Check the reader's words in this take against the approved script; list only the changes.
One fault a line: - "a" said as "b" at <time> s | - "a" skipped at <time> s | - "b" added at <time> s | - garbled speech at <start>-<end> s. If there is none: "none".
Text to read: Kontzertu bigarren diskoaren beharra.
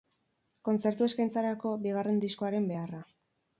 - "eskaintzarako" added at 1.1 s